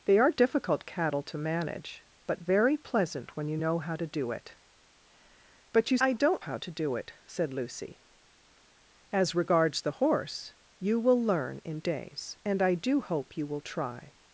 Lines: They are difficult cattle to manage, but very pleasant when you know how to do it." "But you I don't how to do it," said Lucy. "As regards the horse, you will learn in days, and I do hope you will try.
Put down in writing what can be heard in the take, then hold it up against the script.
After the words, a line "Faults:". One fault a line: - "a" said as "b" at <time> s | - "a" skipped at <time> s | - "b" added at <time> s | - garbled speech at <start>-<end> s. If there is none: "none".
They are difficult cattle to manage, but very pleasant when you know how to do it." "But you I don't how to do it," said Lucy. "As regards the horse, you will learn in days, and I do hope you will try.
Faults:
none